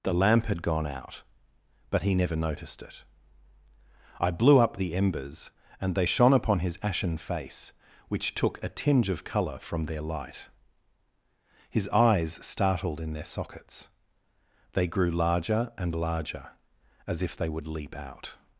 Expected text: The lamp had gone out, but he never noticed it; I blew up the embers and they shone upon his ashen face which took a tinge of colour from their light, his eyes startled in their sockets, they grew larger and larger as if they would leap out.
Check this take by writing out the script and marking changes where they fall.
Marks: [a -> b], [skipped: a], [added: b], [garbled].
The lamp had gone out, but he never noticed it; I blew up the embers and they shone upon his ashen face which took a tinge of colour from their light, his eyes startled in their sockets, they grew larger and larger as if they would leap out.